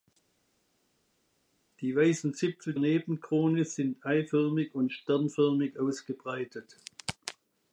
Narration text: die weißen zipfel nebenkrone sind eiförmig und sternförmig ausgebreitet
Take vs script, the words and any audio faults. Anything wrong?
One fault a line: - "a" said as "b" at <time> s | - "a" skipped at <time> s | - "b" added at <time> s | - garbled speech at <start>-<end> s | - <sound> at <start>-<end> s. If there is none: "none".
none